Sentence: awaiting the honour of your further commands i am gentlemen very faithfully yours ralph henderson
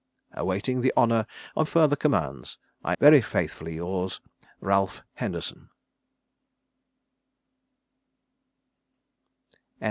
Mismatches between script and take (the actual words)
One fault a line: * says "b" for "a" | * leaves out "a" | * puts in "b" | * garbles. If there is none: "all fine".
* leaves out "your"
* leaves out "am gentlemen"